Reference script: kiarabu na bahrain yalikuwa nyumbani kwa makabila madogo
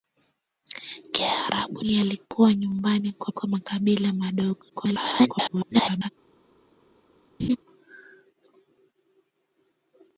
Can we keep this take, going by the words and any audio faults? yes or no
no